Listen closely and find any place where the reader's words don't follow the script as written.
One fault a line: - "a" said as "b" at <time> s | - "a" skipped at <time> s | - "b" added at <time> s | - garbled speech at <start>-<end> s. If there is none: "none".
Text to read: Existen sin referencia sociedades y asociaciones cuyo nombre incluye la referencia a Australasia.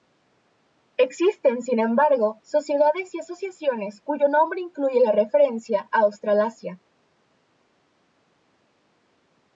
- "referencia" said as "embargo" at 1.8 s